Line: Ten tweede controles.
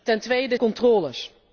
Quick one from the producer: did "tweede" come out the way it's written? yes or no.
yes